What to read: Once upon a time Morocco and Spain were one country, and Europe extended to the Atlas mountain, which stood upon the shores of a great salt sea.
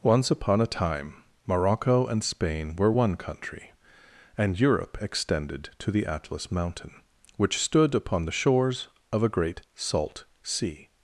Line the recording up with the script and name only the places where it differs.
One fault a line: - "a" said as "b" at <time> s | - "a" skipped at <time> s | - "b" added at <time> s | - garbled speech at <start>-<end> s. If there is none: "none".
none